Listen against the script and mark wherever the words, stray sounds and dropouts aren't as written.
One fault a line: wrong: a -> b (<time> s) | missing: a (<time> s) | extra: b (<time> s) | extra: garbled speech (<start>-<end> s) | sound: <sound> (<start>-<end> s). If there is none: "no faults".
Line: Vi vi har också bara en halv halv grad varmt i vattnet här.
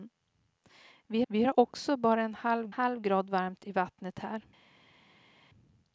no faults